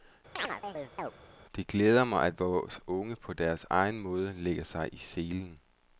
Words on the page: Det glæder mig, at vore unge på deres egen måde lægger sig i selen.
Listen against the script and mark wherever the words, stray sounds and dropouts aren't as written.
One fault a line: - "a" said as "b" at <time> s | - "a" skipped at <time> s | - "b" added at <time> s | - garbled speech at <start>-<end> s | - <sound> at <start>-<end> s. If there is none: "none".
- chirp at 0.4-1.1 s